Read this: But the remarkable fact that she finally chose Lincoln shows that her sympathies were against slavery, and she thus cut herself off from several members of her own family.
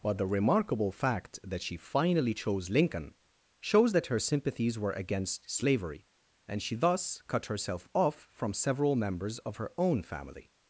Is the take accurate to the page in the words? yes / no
yes